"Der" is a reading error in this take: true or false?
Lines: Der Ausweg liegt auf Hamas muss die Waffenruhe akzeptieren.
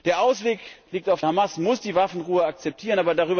false